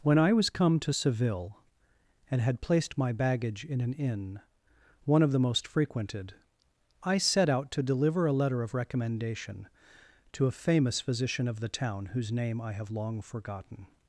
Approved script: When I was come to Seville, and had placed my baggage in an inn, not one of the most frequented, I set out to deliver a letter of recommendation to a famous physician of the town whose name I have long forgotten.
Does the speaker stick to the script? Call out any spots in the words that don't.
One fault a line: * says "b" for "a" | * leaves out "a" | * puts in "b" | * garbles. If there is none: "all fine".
* leaves out "not"